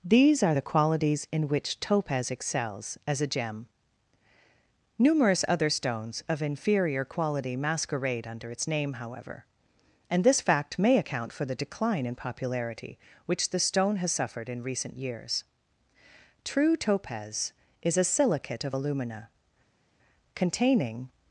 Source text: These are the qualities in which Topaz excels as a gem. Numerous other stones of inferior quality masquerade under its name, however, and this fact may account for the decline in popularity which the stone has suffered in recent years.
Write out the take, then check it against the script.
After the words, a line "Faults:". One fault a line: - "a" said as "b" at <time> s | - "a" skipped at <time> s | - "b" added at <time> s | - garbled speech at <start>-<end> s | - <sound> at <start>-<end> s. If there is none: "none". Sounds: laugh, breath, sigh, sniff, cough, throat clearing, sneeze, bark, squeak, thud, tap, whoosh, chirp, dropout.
These are the qualities in which Topaz excels as a gem. Numerous other stones of inferior quality masquerade under its name, however, and this fact may account for the decline in popularity which the stone has suffered in recent years. True Topaz is a silicate of alumina, containing
Faults:
- "True Topaz is a silicate of alumina containing" added at 16.4 s